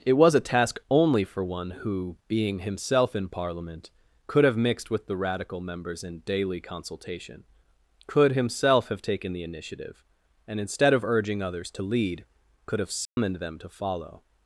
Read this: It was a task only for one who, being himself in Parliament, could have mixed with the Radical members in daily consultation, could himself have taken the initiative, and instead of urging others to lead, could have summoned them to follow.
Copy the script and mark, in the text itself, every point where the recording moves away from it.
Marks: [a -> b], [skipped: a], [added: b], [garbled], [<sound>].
It was a task only for one who, being himself in Parliament, could have mixed with the Radical members in daily consultation, could himself have taken the initiative, and instead of urging others to lead, could have summoned [dropout] them to follow.